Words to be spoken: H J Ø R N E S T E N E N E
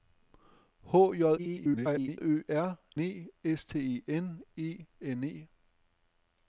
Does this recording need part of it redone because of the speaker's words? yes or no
yes